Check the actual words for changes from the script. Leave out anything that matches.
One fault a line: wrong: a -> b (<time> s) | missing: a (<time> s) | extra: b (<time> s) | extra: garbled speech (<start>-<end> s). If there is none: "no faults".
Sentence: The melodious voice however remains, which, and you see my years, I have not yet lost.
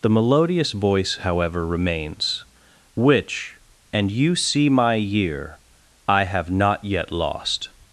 wrong: years -> year (4.9 s)